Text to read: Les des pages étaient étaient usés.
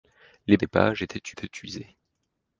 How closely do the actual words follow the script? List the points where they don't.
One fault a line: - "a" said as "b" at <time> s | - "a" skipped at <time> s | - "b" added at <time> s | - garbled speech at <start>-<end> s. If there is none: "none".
none